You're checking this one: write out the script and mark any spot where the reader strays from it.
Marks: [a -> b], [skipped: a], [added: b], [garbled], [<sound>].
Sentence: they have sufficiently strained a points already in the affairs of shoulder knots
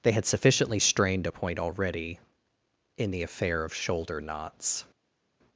they [have -> had] sufficiently strained a [points -> point] already in the [affairs -> affair] of shoulder knots